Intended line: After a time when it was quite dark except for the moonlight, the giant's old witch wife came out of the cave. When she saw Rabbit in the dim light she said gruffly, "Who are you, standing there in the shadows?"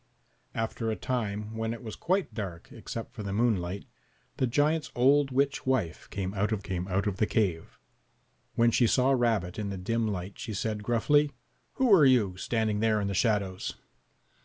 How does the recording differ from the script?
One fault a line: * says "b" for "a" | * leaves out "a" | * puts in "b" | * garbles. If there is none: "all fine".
* puts in "came out of"